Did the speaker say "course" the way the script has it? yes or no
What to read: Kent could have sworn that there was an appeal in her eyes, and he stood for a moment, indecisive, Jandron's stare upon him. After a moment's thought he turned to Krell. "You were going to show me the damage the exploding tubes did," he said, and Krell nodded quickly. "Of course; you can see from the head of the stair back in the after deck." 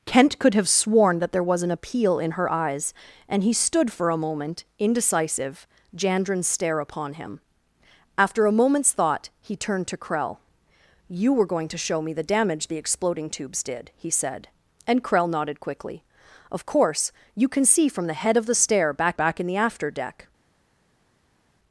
yes